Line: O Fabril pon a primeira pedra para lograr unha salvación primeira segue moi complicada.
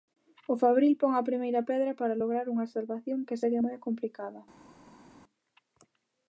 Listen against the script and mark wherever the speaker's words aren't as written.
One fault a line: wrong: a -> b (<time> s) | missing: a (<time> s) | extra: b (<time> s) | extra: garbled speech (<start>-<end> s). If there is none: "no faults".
wrong: primeira -> que (3.3 s)